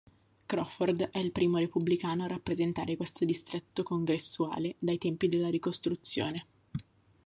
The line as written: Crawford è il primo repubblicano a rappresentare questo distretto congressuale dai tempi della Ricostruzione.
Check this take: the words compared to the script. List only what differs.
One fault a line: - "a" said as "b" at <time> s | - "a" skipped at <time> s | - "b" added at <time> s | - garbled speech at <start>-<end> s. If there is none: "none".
none